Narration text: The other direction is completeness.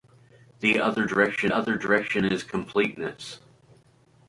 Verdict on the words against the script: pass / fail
fail